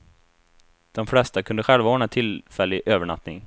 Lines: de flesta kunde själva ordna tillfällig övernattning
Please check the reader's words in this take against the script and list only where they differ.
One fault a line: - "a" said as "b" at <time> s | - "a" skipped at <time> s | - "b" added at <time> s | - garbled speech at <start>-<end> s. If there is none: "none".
none